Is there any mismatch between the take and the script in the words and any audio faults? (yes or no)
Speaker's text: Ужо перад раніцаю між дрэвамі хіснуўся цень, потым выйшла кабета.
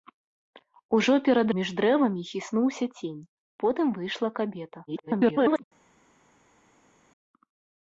yes